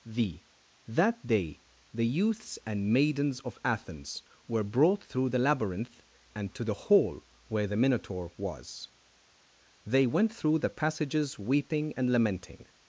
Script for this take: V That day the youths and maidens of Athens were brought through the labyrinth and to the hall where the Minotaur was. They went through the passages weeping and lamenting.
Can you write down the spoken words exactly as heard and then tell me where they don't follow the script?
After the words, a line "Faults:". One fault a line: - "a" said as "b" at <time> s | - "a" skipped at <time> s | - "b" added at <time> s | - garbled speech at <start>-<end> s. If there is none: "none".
V That day the youths and maidens of Athens were brought through the labyrinth and to the hall where the Minotaur was. They went through the passages weeping and lamenting.
Faults:
none